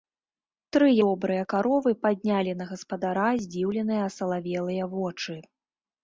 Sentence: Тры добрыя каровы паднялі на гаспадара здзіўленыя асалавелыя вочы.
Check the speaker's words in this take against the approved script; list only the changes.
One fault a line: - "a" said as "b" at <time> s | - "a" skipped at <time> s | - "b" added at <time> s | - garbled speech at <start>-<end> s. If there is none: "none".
none